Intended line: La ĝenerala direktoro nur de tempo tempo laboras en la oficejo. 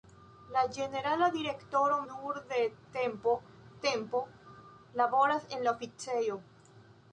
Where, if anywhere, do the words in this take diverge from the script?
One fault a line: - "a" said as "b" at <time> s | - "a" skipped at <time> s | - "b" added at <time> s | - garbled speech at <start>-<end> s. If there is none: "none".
none